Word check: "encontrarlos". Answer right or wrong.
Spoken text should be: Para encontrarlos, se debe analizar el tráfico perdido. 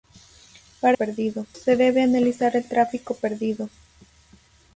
wrong